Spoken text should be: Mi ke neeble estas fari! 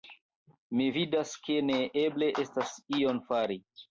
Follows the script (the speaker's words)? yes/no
no